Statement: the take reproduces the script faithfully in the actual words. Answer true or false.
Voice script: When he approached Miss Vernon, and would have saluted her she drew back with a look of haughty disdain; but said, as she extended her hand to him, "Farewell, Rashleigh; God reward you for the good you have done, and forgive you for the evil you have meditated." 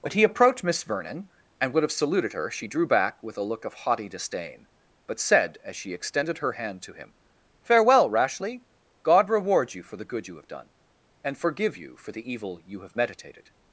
true